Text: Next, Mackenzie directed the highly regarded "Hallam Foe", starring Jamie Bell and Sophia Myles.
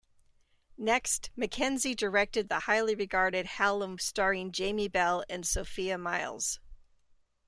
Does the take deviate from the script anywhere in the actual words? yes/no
yes